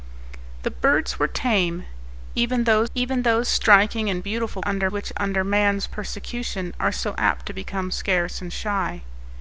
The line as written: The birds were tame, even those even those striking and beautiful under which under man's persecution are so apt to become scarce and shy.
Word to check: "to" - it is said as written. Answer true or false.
true